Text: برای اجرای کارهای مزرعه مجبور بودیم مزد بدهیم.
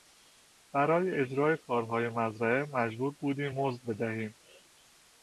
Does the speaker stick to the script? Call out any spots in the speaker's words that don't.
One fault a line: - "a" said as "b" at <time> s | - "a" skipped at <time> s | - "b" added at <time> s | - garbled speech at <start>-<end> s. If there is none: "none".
none